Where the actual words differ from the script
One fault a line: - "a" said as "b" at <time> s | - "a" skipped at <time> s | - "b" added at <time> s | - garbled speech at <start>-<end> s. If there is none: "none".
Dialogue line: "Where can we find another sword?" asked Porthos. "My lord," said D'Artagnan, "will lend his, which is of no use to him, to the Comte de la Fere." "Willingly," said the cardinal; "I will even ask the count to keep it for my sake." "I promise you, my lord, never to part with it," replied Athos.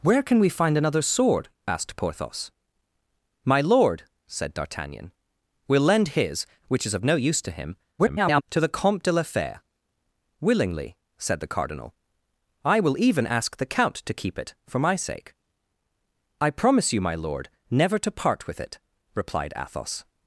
- garbled speech at 8.0-8.4 s